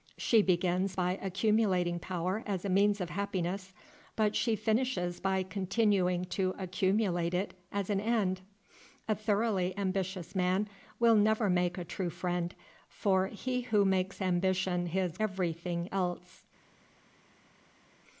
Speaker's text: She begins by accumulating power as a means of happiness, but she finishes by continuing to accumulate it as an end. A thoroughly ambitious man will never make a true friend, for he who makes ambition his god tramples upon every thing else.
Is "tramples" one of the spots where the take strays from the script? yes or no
yes